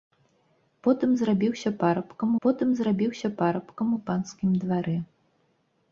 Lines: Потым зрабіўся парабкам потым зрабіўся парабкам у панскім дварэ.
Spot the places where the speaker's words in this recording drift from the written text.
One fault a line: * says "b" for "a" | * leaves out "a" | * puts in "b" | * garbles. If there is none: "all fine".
all fine